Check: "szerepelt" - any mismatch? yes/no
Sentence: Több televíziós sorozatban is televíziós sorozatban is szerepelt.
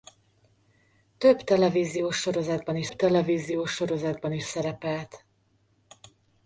no